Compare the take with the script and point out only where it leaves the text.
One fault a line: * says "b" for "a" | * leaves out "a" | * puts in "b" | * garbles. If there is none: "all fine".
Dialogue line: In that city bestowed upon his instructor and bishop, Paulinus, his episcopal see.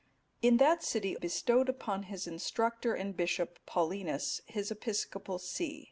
all fine